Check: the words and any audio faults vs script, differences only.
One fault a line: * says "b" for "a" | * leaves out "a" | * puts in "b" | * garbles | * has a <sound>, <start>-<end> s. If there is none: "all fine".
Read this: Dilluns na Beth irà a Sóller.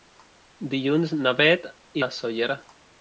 * leaves out "irà"